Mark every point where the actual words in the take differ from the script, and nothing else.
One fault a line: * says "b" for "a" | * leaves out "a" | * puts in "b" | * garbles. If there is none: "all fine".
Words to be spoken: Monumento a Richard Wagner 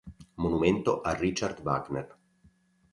all fine